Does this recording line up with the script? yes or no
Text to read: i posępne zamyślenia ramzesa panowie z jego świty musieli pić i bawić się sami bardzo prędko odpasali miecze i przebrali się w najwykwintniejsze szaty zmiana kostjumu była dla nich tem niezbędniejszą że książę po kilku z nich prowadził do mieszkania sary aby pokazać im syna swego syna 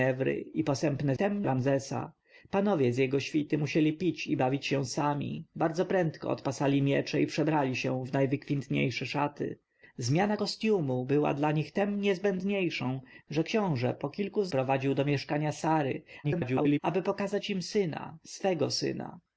no